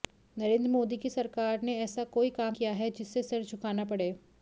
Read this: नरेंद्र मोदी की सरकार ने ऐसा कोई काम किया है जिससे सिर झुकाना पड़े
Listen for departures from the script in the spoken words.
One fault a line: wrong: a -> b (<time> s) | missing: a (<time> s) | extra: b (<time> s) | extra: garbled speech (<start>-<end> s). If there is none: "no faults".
no faults